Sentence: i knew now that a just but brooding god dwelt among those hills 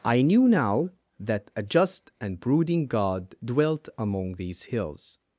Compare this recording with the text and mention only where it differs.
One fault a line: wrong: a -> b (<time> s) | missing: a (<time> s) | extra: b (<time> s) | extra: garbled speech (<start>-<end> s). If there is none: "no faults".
wrong: but -> and (2.2 s)
wrong: those -> these (4.4 s)